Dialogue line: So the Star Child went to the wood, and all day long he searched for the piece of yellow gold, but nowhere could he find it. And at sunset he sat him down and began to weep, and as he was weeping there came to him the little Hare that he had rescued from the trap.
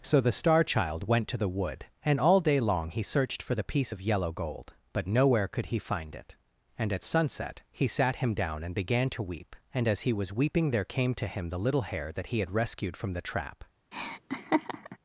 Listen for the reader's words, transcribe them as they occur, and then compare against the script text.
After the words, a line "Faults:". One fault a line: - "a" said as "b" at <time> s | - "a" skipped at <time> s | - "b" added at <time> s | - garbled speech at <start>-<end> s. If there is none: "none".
So the Star Child went to the wood, and all day long he searched for the piece of yellow gold, but nowhere could he find it. And at sunset he sat him down and began to weep, and as he was weeping there came to him the little Hare that he had rescued from the trap.
Faults:
none